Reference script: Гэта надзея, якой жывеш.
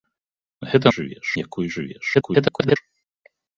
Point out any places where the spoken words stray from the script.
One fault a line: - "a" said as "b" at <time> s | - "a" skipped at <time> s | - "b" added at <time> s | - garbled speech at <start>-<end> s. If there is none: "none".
- "надзея" said as "жывеш" at 1.0 s
- garbled speech at 2.1-2.8 s